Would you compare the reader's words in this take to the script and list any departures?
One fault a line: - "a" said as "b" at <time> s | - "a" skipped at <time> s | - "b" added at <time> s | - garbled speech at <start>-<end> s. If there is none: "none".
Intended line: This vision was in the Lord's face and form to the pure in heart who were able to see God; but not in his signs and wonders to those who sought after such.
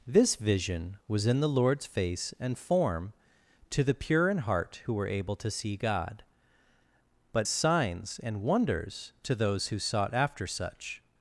- "not in his" skipped at 7.5 s